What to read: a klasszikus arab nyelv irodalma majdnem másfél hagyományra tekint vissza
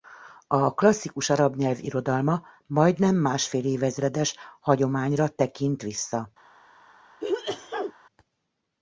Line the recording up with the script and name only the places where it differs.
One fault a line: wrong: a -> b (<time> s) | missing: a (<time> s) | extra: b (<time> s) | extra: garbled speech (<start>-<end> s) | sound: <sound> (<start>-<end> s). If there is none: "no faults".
extra: évezredes (3.6 s)
sound: sneeze (7.2-7.9 s)